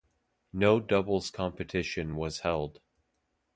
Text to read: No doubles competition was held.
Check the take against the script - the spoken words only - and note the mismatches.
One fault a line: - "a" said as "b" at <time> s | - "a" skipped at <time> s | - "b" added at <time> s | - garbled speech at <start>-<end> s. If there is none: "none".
none